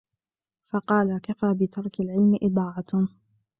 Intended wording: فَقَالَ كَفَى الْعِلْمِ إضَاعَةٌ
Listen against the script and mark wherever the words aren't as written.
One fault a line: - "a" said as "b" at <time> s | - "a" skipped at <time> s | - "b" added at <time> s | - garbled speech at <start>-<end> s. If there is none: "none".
- "بِتَرْكِ" added at 1.6 s